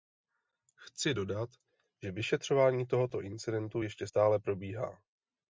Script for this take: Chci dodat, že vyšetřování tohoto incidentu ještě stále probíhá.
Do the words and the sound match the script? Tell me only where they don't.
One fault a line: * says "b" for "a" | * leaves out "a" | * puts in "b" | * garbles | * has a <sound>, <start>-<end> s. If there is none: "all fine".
all fine